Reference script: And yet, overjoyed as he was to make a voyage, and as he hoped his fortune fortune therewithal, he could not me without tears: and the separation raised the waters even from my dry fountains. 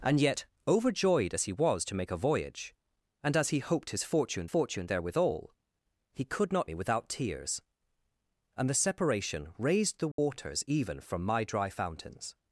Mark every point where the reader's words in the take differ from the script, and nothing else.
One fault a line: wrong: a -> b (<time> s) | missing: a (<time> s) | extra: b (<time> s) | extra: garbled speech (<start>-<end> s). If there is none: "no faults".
no faults